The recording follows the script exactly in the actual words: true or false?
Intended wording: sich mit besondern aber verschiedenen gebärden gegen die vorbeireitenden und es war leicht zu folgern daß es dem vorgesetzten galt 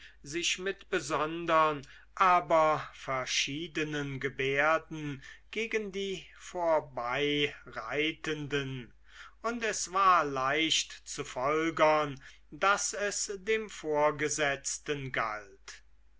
true